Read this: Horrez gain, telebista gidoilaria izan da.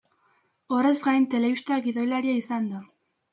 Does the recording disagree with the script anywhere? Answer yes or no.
no